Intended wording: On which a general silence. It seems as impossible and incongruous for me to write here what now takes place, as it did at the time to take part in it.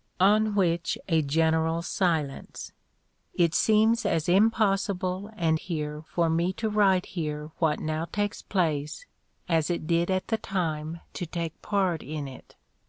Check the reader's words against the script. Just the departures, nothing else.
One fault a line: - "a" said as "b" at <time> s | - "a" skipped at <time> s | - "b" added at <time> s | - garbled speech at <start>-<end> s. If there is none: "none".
- "incongruous" said as "here" at 5.6 s